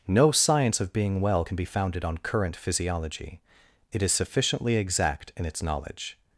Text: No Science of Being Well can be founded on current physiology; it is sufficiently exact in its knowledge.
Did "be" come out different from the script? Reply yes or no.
no